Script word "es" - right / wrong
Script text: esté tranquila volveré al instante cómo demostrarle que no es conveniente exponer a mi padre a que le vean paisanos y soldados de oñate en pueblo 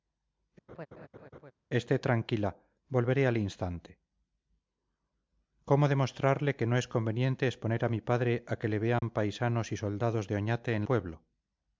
right